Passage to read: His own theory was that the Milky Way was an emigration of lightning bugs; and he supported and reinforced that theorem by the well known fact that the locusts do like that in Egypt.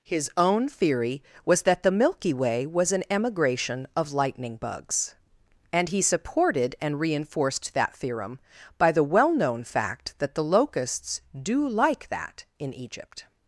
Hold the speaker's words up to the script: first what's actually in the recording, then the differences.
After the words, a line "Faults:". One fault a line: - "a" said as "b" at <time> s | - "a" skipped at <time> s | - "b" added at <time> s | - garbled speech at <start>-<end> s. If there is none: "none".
His own theory was that the Milky Way was an emigration of lightning bugs; and he supported and reinforced that theorem by the well known fact that the locusts do like that in Egypt.
Faults:
none